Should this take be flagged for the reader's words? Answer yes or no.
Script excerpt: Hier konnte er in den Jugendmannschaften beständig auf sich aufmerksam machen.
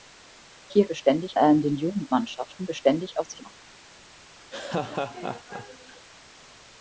yes